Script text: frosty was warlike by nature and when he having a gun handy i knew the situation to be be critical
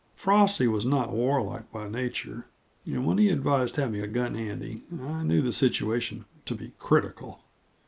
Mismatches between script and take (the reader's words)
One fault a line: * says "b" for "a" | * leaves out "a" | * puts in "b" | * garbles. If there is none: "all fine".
* puts in "not"
* puts in "advised"
* leaves out "be"